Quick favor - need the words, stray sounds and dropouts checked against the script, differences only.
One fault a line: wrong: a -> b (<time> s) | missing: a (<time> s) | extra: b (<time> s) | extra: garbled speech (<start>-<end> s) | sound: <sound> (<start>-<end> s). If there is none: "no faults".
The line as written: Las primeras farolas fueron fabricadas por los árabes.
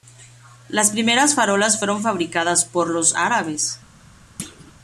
sound: thud (4.4-4.7 s)